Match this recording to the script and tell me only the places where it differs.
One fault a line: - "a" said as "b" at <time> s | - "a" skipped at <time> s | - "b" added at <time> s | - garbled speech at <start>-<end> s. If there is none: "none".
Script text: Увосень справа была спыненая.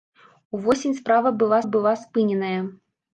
- "была" added at 1.6 s